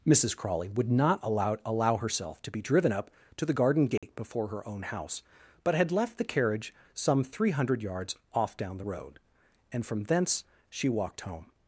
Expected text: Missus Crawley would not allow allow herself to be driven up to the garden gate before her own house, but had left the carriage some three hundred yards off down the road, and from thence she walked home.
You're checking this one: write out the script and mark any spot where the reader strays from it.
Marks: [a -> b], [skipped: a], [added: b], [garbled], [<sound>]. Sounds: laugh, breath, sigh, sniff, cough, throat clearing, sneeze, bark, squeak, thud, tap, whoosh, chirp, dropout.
Missus Crawley would not allow allow herself to be driven up to the garden gate [dropout] before her own house, but had left the carriage some three hundred yards off down the road, and from thence she walked home.